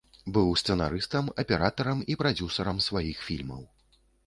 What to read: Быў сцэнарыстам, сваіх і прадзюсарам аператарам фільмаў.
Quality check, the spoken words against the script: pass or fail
fail